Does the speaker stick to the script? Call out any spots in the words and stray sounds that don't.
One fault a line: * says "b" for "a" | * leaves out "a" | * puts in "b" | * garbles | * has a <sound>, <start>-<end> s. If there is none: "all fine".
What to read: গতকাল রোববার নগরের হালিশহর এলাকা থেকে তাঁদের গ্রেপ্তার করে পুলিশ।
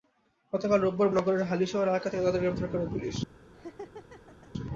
* has a laugh, 3.5-4.5 s